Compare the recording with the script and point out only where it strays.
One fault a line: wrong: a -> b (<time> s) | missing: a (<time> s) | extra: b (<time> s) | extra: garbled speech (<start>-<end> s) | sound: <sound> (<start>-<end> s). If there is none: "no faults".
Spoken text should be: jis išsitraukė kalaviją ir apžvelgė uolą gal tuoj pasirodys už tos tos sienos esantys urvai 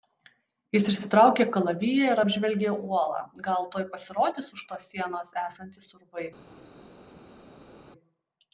missing: tos (4.9 s)